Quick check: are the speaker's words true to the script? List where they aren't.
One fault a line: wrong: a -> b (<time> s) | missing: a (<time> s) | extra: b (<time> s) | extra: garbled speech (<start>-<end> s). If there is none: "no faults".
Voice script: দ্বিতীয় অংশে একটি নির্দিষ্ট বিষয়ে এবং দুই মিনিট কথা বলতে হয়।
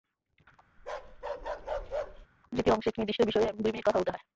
no faults